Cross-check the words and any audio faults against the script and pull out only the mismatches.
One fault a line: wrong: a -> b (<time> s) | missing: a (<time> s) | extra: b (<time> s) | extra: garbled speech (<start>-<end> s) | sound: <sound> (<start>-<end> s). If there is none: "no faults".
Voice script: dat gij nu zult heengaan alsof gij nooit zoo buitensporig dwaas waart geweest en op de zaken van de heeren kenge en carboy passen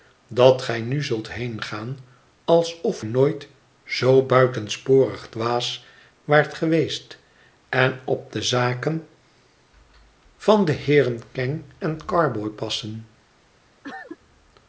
missing: gij (3.0 s)
sound: cough (13.8-14.2 s)